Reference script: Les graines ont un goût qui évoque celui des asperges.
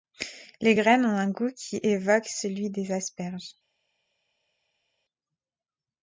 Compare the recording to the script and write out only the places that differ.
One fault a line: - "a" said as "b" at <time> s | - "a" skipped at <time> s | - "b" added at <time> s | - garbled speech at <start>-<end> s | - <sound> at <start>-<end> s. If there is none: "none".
none